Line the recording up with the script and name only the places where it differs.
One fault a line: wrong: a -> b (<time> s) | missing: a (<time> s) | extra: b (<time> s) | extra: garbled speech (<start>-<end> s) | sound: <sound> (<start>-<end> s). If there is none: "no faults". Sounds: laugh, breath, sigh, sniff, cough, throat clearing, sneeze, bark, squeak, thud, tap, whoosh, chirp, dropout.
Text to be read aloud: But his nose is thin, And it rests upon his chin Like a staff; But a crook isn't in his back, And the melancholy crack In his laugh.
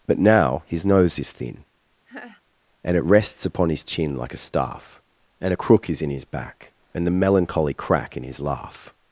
extra: now (0.2 s)
sound: laugh (2.1-2.4 s)
wrong: But -> And (5.4 s)
wrong: isn't -> is (5.9 s)